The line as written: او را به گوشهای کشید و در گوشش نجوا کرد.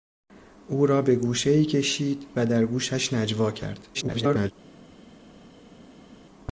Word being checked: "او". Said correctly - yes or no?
yes